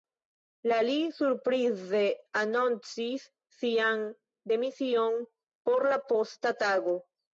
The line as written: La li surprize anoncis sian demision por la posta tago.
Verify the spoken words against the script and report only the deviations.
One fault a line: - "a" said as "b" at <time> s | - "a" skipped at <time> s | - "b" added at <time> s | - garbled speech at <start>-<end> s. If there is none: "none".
none